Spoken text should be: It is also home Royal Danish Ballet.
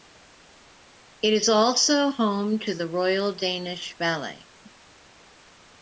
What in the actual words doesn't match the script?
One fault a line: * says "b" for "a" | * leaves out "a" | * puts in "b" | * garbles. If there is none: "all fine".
* puts in "to the"